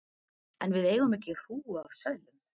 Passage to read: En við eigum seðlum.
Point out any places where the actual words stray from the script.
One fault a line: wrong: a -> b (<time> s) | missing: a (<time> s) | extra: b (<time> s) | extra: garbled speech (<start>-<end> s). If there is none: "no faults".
extra: ekki hrúgu af (1.2 s)